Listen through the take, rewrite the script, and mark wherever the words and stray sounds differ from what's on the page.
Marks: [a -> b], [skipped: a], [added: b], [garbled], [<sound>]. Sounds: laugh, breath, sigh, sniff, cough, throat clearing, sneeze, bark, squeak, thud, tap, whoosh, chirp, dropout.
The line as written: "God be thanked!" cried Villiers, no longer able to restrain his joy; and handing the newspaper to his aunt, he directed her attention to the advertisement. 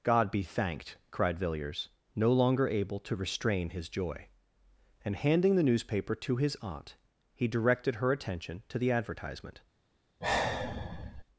"God be thanked!" cried Villiers, no longer able to restrain his joy; and handing the newspaper to his aunt, he directed her attention to the advertisement. [sigh]